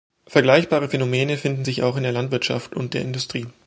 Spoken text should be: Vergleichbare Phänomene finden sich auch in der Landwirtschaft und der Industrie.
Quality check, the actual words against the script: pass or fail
pass